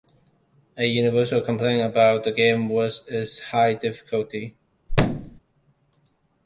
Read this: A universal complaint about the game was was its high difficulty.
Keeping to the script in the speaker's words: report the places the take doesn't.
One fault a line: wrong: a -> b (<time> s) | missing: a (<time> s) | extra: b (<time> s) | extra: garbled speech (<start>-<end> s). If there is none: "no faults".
missing: was (3.0 s)